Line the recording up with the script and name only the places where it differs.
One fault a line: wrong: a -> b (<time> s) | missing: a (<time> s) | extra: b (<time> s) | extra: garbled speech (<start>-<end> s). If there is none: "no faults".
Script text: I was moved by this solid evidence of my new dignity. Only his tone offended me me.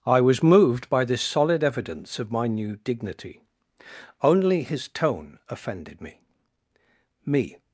no faults